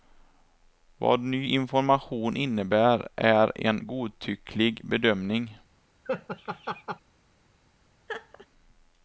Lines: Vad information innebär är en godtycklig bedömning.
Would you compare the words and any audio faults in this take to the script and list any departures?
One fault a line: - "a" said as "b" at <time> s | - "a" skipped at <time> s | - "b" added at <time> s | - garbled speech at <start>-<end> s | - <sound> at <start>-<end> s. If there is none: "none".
- "ny" added at 1.2 s
- laugh at 6.0-7.0 s
- laugh at 8.1-8.5 s